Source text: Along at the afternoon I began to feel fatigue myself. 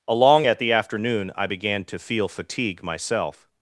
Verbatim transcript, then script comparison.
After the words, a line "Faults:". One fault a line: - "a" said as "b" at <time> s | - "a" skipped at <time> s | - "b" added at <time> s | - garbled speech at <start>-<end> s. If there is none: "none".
Along at the afternoon I began to feel fatigue myself.
Faults:
none